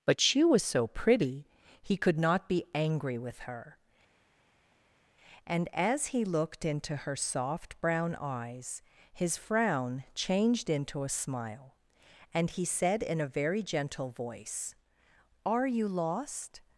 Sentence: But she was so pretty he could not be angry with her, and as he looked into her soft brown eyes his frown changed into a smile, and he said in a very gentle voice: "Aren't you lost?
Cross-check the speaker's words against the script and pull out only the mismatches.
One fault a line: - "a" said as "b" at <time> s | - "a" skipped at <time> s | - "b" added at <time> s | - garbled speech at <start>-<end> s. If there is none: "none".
- "Aren't" said as "Are" at 15.5 s